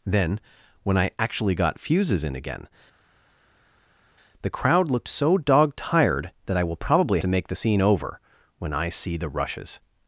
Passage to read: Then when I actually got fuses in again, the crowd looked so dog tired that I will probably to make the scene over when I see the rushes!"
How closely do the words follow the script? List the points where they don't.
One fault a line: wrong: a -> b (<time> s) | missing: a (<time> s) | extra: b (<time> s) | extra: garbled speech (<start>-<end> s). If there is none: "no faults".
no faults